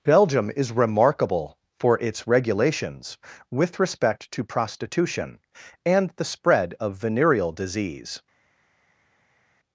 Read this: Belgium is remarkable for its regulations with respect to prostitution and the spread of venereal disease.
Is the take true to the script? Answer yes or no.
yes